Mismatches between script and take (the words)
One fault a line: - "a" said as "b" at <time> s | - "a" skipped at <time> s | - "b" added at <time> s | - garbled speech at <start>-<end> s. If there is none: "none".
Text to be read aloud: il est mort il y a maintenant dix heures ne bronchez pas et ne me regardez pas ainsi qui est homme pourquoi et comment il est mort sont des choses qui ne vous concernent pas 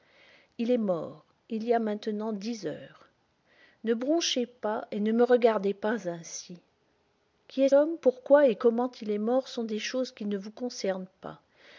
none